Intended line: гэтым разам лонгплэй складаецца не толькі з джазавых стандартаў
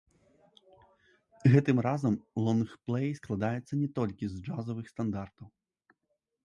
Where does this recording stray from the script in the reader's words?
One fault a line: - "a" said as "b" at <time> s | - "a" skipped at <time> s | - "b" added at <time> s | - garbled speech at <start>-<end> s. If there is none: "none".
none